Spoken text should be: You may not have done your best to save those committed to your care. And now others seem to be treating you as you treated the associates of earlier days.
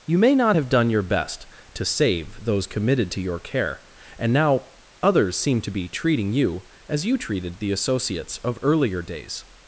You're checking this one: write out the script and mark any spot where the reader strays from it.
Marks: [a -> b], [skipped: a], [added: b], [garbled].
You may not have done your best to save those committed to your care. And now others seem to be treating you as you treated the associates of earlier days.